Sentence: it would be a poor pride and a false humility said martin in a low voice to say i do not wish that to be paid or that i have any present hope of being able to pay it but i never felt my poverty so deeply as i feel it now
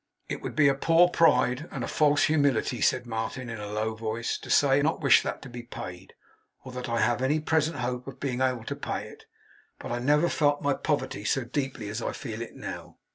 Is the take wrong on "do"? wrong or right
wrong